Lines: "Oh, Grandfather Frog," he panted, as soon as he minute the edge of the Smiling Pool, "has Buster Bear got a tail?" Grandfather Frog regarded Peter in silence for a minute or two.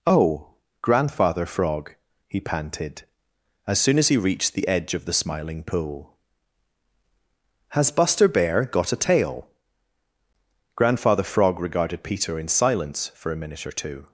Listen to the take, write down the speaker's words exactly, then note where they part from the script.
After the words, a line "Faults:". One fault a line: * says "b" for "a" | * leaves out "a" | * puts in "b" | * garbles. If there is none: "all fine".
"Oh, Grandfather Frog," he panted, as soon as he reached the edge of the Smiling Pool, "has Buster Bear got a tail?" Grandfather Frog regarded Peter in silence for a minute or two.
Faults:
* says "reached" for "minute"